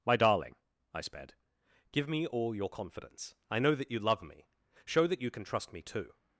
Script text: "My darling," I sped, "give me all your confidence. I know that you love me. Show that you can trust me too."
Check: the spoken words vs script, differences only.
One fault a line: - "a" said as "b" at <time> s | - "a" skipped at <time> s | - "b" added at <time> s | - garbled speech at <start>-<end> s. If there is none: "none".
none